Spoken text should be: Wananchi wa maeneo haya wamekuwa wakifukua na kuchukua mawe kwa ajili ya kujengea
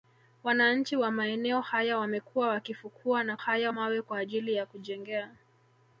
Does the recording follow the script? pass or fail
fail